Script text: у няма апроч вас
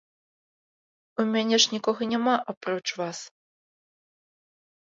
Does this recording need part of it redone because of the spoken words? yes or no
yes